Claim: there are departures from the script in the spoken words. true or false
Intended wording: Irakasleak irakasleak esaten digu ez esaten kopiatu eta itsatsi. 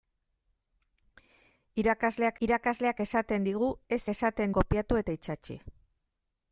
false